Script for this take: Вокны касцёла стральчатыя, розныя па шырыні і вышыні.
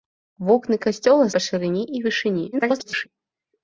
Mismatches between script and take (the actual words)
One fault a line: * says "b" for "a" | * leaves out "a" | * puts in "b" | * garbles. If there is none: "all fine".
* leaves out "стральчатыя розныя"
* garbles